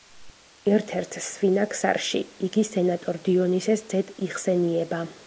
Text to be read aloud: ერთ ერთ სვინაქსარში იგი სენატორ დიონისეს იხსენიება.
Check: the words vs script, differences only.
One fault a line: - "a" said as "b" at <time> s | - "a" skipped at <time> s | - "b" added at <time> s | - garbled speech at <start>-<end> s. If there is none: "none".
- "ძედ" added at 3.9 s